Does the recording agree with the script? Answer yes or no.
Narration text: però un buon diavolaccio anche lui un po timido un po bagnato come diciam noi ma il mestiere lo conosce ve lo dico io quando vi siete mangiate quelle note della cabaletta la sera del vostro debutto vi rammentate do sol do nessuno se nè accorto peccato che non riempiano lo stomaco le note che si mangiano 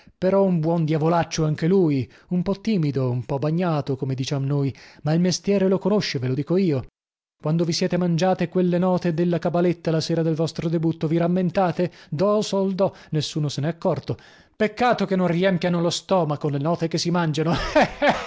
yes